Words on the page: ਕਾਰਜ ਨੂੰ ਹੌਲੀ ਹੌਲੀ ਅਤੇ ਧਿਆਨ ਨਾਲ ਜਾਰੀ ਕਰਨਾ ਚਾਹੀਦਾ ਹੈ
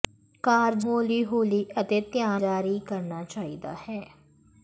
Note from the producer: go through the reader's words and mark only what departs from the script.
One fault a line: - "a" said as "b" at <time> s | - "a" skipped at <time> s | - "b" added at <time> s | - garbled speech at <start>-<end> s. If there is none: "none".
- "ਨੂੰ" skipped at 0.8 s
- "ਨਾਲ" skipped at 2.4 s